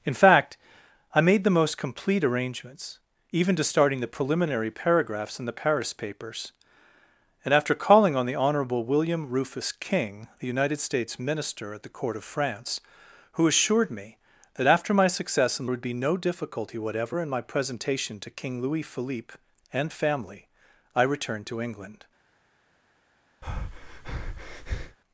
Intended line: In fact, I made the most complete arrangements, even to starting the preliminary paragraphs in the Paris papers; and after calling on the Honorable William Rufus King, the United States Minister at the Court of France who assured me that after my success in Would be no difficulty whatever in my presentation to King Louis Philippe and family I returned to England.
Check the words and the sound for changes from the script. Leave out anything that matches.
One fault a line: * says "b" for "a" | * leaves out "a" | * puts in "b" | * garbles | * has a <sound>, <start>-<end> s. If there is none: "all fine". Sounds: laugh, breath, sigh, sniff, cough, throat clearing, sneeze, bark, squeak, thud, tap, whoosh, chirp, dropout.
* has a breath, 23.4-25.0 s